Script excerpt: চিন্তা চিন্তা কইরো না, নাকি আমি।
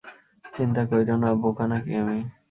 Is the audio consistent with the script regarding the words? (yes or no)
no